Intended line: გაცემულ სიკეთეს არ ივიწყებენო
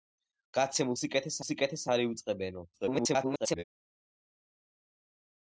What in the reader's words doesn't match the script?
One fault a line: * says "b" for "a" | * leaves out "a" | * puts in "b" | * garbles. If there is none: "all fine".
* puts in "სიკეთეს"
* garbles